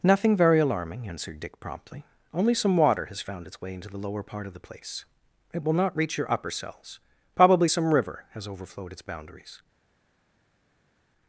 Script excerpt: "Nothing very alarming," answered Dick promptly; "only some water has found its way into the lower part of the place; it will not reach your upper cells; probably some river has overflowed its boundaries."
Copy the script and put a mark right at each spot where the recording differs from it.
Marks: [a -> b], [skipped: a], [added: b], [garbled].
"Nothing very alarming," answered Dick promptly; "only some water has found its way into the lower part of the place; it will not reach your upper cells; probably some river has overflowed its boundaries."